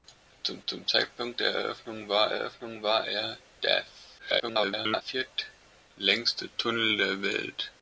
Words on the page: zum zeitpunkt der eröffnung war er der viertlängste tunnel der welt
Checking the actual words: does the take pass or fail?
fail